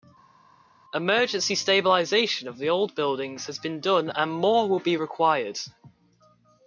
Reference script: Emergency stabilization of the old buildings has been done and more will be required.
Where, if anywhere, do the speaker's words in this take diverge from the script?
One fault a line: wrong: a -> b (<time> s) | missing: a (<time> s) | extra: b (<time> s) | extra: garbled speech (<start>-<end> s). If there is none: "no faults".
no faults